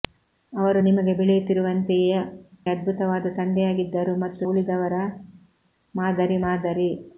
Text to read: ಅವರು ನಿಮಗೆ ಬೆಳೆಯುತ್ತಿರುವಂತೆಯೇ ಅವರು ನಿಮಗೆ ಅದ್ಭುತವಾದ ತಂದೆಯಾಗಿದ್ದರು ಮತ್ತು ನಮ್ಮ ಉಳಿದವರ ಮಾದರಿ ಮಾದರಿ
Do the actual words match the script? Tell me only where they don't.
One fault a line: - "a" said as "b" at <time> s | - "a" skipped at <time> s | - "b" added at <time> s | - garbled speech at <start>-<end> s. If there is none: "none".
- "ಅವರು ನಿಮಗೆ" skipped at 2.1 s
- "ನಮ್ಮ" skipped at 4.5 s